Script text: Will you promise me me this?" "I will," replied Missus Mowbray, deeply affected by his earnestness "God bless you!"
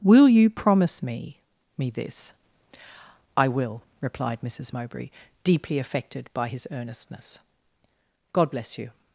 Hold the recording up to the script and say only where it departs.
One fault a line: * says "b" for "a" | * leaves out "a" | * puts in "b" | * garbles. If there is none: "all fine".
all fine